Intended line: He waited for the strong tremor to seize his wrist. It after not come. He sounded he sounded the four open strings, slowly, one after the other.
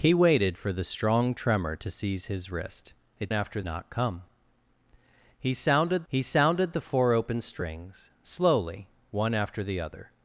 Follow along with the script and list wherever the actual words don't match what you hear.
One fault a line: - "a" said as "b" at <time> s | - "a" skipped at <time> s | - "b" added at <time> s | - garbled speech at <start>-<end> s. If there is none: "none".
none